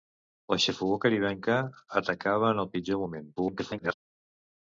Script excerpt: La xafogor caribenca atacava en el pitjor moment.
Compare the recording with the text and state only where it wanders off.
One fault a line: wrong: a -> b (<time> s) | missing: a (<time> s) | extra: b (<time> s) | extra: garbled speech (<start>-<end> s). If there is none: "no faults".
extra: garbled speech (3.4-3.9 s)